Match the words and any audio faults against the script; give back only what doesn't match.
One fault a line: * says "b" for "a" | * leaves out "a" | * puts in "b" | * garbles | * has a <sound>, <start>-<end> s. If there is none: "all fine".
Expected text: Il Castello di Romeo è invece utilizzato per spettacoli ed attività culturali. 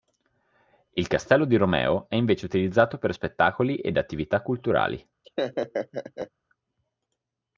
* has a laugh, 5.2-6.3 s